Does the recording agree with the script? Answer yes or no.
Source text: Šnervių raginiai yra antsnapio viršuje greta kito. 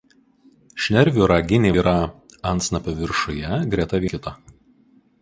yes